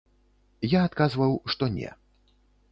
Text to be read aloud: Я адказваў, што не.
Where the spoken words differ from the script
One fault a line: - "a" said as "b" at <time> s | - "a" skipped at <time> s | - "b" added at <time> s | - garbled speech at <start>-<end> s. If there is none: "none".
none